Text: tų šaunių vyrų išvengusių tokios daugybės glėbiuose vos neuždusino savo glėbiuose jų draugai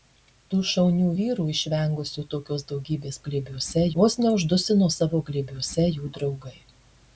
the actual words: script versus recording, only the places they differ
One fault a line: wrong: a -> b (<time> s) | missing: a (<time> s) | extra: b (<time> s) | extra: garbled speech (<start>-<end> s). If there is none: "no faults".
no faults